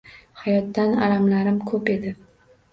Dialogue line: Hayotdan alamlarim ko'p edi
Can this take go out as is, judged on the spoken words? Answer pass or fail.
pass